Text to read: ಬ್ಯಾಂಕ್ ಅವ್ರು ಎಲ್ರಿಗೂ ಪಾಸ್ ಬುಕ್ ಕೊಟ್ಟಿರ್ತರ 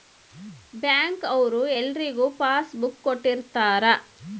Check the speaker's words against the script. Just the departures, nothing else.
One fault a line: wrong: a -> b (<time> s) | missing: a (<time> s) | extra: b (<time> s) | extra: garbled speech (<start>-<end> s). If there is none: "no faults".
no faults